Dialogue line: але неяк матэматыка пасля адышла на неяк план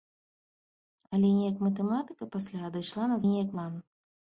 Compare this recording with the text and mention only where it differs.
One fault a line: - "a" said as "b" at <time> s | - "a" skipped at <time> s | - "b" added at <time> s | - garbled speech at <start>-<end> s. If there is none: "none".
none